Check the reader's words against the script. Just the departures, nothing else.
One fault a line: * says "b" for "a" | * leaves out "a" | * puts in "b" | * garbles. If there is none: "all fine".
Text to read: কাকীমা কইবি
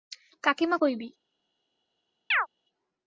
all fine